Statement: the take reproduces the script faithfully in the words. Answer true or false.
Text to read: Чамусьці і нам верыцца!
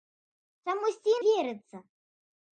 false